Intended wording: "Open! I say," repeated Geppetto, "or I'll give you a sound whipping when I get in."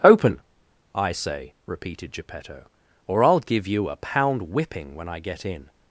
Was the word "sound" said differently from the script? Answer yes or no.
yes